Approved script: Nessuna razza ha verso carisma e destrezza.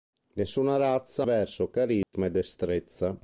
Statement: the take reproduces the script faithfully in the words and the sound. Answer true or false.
false